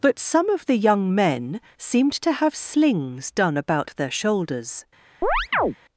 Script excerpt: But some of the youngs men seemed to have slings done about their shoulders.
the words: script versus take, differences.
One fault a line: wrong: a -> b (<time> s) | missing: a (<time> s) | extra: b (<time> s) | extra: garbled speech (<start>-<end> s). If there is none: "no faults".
wrong: youngs -> young (0.8 s)